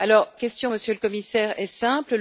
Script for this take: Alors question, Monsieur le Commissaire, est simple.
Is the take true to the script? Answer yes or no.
yes